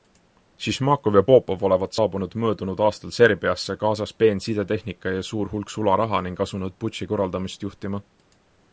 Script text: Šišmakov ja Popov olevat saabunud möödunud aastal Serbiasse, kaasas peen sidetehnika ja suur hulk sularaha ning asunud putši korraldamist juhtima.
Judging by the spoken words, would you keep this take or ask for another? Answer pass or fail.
pass